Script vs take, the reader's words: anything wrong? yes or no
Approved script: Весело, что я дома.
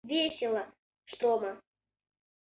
yes